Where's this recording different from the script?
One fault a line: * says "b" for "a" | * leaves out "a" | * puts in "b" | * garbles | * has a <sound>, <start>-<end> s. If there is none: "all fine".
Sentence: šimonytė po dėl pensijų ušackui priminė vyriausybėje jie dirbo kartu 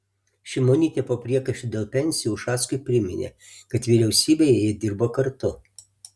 * puts in "priekaištų"
* puts in "kad"